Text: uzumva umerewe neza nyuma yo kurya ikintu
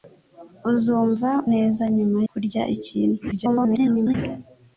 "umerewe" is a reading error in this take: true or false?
true